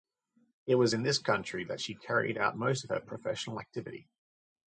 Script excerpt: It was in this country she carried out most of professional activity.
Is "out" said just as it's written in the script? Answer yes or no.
yes